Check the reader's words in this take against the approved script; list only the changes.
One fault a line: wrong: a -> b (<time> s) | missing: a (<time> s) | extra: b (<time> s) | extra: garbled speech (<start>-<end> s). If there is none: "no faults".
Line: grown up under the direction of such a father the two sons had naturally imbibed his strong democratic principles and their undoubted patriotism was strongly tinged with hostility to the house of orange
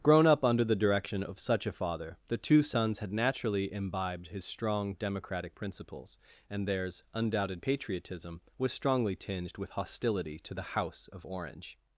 wrong: their -> theirs (6.7 s)